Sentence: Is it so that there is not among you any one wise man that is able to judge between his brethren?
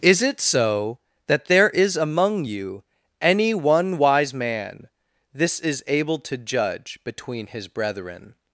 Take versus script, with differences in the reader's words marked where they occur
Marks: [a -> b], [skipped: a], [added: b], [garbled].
Is it so that there is [skipped: not] among you any one wise man [that -> this] is able to judge between his brethren?